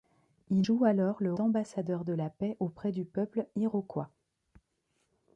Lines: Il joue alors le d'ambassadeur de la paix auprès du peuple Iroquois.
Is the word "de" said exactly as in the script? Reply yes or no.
yes